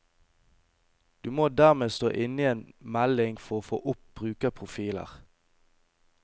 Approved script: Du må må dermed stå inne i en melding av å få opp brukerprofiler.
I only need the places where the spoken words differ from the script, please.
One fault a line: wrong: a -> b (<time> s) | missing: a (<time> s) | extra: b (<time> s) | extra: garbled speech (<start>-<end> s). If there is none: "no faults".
missing: må (1.5 s)
wrong: av -> for (3.4 s)